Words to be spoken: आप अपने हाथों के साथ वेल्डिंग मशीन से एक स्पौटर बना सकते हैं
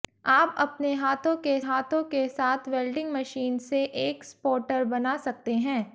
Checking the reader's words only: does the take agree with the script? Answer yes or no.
no